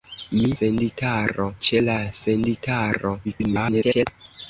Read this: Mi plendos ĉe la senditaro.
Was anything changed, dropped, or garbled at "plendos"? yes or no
yes